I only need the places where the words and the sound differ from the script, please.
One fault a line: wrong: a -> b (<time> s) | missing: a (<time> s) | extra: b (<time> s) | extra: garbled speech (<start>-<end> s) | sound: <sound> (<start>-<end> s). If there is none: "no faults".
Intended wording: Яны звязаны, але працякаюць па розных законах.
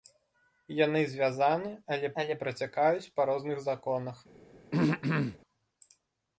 extra: але (2.2 s)
sound: throat clearing (4.7-5.4 s)